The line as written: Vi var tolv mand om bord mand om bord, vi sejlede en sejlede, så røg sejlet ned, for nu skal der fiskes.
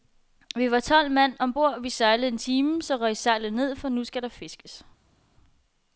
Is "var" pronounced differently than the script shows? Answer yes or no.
no